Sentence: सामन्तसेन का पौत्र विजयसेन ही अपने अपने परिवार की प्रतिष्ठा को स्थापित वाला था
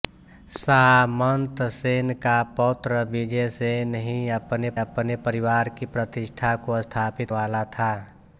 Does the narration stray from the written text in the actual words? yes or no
no